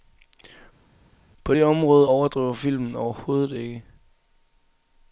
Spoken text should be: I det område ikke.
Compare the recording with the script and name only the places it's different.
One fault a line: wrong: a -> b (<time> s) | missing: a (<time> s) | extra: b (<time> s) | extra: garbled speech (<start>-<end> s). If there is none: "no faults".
wrong: I -> På (1.4 s)
extra: overdriver filmen overhovedet (2.1 s)